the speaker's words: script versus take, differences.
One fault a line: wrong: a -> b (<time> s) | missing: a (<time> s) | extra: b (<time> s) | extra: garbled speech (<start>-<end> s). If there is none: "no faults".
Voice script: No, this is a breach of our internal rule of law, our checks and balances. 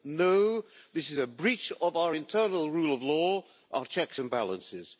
no faults